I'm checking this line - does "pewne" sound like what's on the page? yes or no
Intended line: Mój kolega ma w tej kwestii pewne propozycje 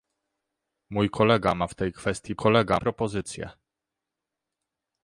no